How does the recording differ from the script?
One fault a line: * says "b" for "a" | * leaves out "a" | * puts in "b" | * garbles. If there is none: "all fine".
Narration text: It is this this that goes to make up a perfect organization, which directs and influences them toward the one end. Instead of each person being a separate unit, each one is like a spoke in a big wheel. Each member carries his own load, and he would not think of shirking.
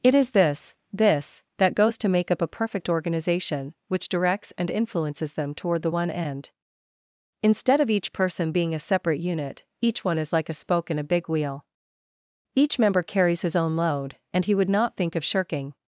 all fine